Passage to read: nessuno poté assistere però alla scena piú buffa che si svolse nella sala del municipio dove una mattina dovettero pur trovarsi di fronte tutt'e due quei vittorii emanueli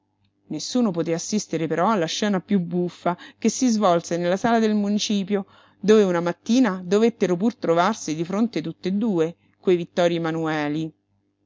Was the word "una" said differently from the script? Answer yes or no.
no